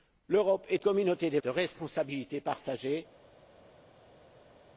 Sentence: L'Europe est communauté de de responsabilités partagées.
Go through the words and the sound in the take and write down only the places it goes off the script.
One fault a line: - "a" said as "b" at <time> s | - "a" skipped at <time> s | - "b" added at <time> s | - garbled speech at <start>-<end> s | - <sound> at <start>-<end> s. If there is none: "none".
none